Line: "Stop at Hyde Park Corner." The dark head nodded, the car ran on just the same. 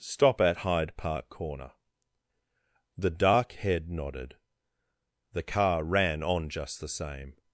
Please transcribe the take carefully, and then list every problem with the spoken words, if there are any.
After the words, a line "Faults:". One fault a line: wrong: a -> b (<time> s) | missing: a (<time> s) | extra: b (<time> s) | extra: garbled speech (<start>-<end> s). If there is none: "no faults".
"Stop at Hyde Park Corner." The dark head nodded, the car ran on just the same.
Faults:
no faults